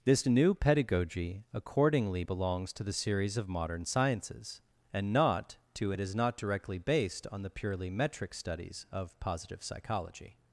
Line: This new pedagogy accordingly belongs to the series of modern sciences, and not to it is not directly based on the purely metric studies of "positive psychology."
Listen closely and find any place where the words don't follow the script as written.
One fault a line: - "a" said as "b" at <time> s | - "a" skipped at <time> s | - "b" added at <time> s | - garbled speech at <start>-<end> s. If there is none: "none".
none